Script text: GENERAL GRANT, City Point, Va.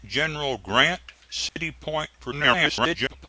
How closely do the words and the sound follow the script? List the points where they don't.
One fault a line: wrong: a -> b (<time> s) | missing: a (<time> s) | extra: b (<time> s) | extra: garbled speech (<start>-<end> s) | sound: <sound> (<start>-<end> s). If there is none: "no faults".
sound: dropout (1.5-1.6 s)
extra: garbled speech (2.3-3.3 s)